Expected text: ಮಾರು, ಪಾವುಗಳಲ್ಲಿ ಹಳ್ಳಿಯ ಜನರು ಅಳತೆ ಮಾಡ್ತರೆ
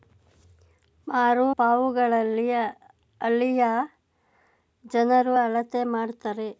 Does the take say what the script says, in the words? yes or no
yes